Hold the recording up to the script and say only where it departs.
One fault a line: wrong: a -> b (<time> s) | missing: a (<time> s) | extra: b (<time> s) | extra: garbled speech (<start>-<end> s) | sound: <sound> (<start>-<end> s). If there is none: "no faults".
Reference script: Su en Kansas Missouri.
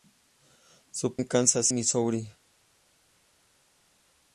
no faults